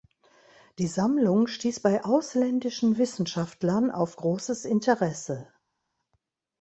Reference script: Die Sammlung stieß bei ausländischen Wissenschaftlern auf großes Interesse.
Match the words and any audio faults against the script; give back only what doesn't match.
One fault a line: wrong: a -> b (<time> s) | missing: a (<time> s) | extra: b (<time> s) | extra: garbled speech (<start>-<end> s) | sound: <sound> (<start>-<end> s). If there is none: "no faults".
no faults